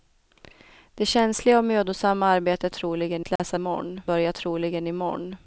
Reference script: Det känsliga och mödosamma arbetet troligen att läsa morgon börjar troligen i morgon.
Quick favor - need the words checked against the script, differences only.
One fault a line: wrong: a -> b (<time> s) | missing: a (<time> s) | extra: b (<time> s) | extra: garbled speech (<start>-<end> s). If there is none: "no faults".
no faults